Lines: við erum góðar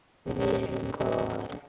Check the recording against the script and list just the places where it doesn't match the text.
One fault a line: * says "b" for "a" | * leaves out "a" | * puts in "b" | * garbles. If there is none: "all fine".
all fine